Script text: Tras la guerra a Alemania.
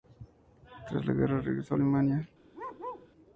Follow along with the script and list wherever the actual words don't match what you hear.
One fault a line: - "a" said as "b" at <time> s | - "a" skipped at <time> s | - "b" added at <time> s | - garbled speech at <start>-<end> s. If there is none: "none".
- "regresó" added at 1.4 s